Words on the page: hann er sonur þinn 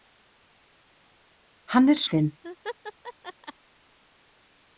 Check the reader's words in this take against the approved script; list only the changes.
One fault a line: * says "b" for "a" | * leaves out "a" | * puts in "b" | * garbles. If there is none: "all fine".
* leaves out "sonur"